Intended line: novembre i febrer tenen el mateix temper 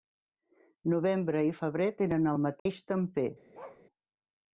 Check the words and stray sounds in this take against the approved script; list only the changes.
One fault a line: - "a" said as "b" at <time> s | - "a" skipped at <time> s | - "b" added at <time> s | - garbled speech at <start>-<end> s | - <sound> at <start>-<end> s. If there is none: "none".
- dropout at 2.6-2.7 s
- bark at 3.5-3.8 s